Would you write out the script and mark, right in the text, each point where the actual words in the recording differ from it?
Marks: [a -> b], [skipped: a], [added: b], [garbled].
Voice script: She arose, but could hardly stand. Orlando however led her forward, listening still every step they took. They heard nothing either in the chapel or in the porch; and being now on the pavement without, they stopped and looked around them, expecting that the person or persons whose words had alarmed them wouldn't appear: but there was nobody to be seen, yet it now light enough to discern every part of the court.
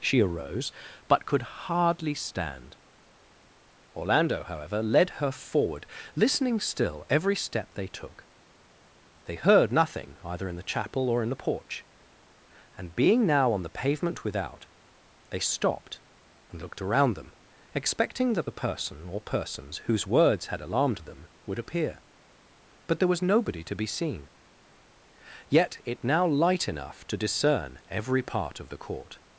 She arose, but could hardly stand. Orlando however led her forward, listening still every step they took. They heard nothing either in the chapel or in the porch; and being now on the pavement without, they stopped and looked around them, expecting that the person or persons whose words had alarmed them [wouldn't -> would] appear: but there was nobody to be seen, yet it now light enough to discern every part of the court.